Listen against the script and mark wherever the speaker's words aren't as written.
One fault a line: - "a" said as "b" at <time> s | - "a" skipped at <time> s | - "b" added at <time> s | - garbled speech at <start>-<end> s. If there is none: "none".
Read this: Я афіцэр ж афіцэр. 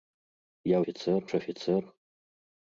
none